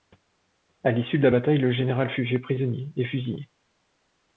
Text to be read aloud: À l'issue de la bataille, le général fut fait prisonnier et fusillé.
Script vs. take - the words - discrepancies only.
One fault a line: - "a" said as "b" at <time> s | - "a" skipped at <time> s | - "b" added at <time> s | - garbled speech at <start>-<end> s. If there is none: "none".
none